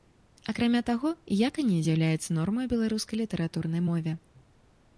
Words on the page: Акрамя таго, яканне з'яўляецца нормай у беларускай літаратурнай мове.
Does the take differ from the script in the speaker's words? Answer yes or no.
no